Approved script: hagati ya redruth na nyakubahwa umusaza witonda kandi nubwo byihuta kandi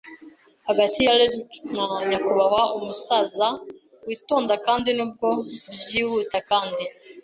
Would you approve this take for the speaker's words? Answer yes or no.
yes